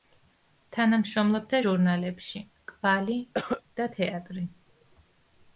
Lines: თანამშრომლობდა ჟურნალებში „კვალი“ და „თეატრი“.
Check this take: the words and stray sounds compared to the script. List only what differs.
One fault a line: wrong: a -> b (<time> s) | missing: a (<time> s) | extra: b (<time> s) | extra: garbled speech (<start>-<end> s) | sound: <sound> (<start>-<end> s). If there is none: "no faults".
sound: cough (3.3-3.6 s)